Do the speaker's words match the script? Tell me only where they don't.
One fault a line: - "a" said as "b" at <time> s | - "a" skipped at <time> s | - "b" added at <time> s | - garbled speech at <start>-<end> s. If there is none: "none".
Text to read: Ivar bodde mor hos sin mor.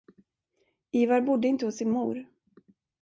- "mor" said as "inte" at 1.5 s